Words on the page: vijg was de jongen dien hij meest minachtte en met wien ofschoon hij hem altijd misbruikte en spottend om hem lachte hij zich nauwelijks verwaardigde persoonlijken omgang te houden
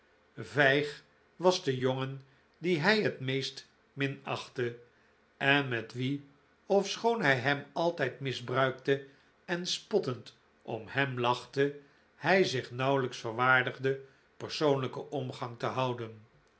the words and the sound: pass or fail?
fail